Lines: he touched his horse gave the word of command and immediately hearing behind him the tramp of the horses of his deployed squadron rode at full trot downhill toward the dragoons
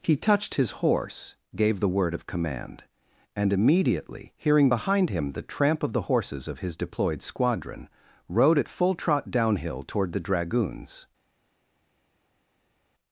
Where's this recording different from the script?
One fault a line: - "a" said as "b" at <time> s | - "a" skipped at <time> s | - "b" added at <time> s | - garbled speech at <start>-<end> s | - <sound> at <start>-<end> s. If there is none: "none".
none